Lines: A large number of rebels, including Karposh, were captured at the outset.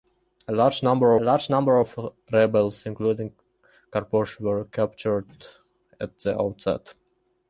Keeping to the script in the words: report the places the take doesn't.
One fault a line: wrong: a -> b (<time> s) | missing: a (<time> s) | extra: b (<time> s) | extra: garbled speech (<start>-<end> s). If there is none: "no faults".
extra: large number (1.2 s)